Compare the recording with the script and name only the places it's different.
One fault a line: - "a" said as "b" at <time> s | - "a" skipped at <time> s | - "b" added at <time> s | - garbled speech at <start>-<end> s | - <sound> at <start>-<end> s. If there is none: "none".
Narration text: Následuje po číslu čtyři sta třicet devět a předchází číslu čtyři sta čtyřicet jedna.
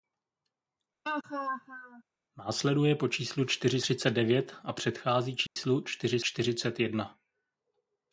- laugh at 1.0-2.0 s
- "sta" skipped at 3.8 s
- dropout at 5.5-5.6 s
- "sta" skipped at 6.2 s